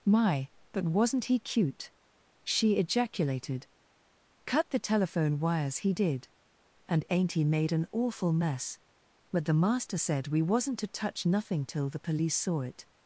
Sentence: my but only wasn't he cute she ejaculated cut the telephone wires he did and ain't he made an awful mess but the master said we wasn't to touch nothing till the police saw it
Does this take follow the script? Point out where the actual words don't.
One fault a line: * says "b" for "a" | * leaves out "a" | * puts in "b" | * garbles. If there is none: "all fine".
* leaves out "only"